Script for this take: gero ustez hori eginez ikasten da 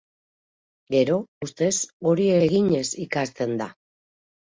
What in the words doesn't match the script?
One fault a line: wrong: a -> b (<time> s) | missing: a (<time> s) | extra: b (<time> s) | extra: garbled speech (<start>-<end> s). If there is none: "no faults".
no faults